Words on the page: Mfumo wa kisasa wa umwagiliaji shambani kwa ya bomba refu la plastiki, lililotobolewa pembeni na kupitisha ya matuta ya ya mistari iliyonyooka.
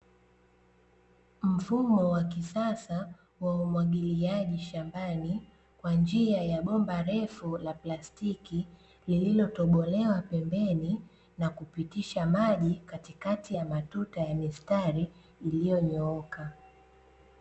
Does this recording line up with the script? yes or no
no